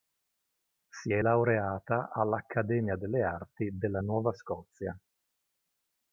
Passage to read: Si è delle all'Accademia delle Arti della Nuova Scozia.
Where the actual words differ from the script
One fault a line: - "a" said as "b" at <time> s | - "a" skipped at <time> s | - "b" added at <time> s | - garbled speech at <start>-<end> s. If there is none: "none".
- "delle" said as "laureata" at 1.2 s